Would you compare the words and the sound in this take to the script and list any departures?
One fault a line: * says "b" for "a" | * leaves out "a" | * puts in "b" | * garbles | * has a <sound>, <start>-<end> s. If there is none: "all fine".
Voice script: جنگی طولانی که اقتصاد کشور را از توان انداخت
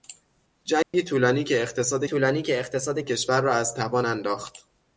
* has a dropout, 0.8-0.9 s
* puts in "طولانی که اقتصاد"